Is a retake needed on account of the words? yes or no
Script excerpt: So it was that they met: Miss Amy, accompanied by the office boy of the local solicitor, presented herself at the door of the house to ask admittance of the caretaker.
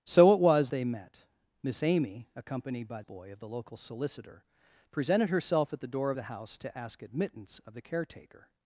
yes